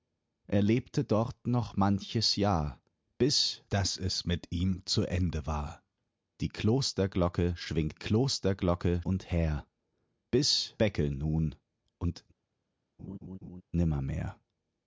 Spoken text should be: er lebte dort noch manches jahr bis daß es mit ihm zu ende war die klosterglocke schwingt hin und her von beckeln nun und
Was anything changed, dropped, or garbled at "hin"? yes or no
yes